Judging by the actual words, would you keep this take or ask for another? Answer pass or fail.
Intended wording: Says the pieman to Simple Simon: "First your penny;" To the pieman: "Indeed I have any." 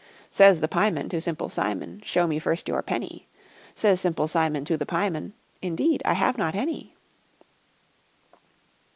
fail